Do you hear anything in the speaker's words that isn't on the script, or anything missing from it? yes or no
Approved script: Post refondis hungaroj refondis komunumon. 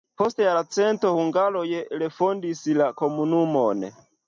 yes